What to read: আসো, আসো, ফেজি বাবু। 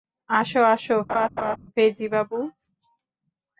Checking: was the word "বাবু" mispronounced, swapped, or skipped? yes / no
no